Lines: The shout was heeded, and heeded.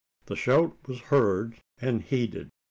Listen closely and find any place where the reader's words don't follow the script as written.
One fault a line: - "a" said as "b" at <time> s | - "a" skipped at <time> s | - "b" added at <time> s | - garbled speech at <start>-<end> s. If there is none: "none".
- "heeded" said as "heard" at 1.0 s